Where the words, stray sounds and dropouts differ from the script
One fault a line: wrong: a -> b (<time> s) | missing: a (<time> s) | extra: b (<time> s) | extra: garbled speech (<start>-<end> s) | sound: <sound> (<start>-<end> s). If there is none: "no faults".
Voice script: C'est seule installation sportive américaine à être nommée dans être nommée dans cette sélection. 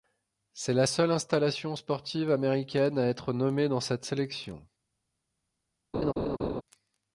extra: la (0.7 s)
missing: être nommée dans (3.8 s)
sound: laugh (5.9-6.6 s)